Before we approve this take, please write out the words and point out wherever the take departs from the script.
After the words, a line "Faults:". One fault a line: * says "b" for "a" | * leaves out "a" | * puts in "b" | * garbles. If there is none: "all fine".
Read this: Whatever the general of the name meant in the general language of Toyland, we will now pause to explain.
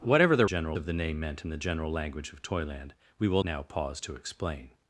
Whatever the general of the name meant in the general language of Toyland, we will now pause to explain.
Faults:
all fine